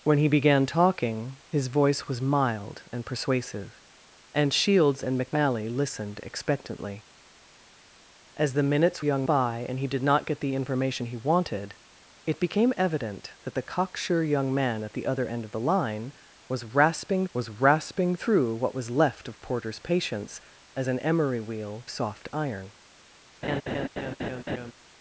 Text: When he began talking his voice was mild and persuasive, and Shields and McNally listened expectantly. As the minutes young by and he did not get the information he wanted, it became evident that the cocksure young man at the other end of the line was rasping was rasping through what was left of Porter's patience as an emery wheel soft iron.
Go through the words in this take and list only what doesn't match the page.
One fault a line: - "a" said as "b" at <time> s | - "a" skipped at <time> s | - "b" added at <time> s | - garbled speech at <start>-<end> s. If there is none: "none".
none